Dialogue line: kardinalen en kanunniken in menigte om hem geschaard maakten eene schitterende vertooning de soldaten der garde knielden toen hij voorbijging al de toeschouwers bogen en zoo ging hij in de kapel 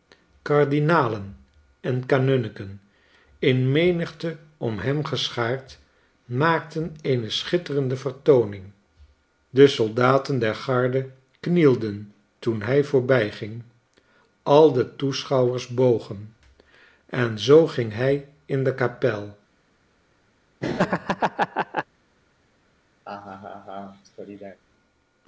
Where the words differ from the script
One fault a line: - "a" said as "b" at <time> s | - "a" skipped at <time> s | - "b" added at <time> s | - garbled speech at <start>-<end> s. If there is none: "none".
none